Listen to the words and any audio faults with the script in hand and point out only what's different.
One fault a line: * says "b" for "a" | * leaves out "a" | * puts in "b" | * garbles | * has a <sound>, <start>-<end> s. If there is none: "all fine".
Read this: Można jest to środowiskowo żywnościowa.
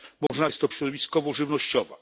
* has a dropout, 0.3-0.3 s